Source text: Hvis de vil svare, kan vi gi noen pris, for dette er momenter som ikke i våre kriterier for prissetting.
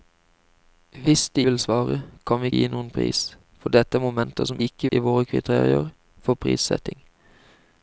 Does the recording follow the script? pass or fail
pass